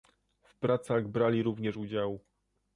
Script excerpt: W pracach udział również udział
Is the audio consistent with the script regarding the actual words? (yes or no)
no